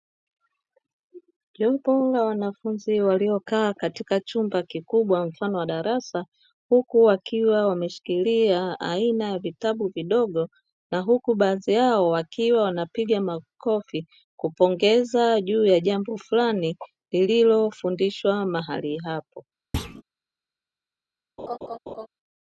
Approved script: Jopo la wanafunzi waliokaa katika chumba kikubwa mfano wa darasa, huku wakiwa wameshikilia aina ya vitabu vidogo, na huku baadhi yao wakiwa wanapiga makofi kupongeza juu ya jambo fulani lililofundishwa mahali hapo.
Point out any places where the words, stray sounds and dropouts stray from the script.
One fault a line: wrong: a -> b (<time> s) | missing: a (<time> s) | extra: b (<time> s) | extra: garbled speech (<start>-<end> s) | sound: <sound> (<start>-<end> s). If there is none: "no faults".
sound: thud (19.7-20.0 s)
sound: laugh (21.4-22.1 s)